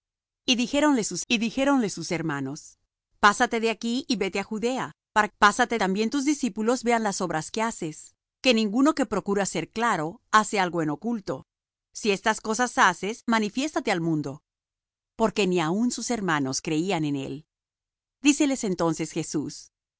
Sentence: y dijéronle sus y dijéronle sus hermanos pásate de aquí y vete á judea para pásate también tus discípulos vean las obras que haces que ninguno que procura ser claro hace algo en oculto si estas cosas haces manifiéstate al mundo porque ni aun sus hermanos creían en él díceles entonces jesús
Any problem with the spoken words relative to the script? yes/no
no